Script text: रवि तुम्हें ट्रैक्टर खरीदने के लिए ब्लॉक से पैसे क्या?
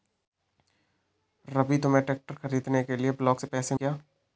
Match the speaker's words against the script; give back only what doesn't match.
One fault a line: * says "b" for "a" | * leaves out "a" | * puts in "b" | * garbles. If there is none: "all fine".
all fine